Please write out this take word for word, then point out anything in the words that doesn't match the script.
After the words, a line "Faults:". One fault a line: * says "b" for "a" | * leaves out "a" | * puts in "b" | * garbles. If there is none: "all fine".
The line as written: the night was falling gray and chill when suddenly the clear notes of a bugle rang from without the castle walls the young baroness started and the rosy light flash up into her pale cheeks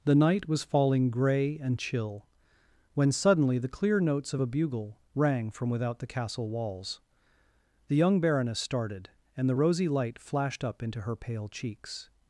the night was falling gray and chill when suddenly the clear notes of a bugle rang from without the castle walls the young baroness started and the rosy light flashed up into her pale cheeks
Faults:
* says "flashed" for "flash"